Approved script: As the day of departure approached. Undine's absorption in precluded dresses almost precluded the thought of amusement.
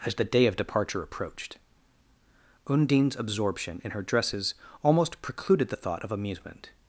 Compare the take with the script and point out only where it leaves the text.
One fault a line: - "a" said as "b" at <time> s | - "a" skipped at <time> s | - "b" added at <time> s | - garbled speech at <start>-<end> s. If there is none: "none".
- "precluded" said as "her" at 3.9 s